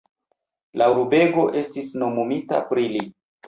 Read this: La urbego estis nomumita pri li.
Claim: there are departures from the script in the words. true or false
false